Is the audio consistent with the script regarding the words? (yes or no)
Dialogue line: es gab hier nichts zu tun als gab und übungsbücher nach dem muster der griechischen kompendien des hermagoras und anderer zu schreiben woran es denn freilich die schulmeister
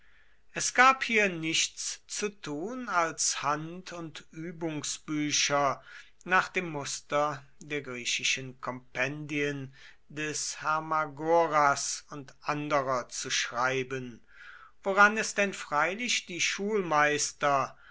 no